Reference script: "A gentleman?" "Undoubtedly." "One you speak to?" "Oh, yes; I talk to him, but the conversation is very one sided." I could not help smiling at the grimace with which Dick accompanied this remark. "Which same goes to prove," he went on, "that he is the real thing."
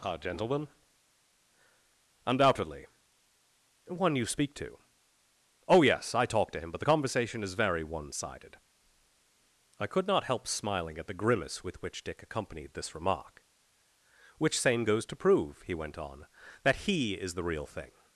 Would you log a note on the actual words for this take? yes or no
no